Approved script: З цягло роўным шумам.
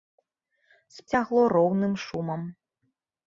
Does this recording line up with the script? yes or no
yes